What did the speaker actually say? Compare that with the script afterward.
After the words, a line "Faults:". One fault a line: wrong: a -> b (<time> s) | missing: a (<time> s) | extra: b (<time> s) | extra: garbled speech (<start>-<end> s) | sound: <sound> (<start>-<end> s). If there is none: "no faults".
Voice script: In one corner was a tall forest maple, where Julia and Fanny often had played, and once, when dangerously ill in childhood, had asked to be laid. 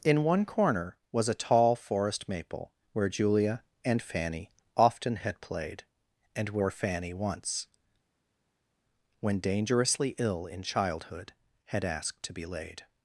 In one corner was a tall forest maple, where Julia and Fanny often had played, and where Fanny once, when dangerously ill in childhood, had asked to be laid.
Faults:
extra: where Fanny (6.5 s)